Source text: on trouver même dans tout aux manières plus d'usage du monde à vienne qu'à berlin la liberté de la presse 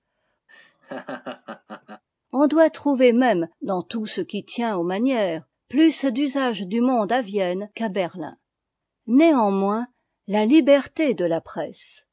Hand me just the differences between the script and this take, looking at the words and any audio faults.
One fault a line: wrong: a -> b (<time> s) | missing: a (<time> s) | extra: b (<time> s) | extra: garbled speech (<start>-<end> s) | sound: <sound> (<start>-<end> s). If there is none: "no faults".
sound: laugh (0.5-2.0 s)
extra: doit (2.5 s)
extra: ce qui tient (4.1 s)
extra: néanmoins (9.1 s)